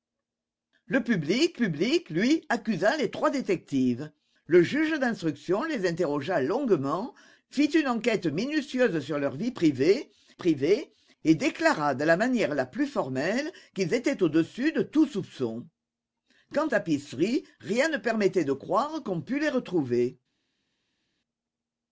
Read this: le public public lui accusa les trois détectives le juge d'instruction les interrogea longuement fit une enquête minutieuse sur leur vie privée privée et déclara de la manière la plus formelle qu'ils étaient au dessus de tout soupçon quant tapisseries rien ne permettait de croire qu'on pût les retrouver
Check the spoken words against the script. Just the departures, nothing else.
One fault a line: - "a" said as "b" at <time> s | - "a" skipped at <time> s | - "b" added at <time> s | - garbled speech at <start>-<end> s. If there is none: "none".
none